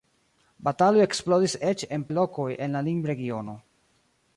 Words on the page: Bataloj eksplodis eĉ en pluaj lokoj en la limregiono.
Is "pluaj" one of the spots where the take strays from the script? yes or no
yes